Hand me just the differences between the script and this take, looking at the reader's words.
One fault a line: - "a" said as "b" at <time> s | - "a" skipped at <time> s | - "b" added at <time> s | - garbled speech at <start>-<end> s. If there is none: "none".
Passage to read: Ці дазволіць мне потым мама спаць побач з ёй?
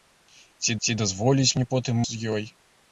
- "ці" added at 0.8 s
- "мама спаць побач" skipped at 2.0 s